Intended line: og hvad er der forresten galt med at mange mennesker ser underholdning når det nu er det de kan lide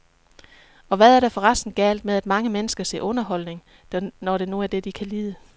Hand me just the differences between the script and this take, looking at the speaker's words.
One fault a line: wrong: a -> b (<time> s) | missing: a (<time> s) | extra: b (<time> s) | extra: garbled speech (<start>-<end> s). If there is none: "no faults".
no faults